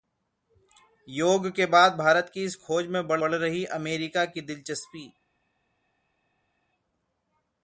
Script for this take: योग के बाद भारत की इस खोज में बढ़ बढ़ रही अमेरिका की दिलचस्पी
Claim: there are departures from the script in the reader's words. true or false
false